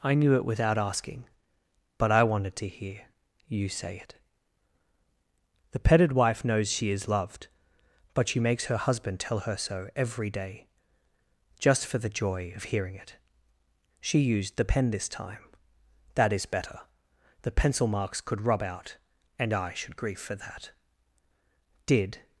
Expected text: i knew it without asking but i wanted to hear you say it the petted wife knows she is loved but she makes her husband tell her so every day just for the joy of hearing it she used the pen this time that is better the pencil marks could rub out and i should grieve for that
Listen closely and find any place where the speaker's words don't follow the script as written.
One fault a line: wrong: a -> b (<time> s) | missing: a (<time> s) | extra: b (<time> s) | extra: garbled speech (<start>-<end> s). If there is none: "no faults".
extra: did (21.9 s)